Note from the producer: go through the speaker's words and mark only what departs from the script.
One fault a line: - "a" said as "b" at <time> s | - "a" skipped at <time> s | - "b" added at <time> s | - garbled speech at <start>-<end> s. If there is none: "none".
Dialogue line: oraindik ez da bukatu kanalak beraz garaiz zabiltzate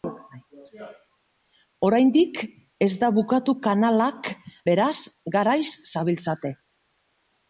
none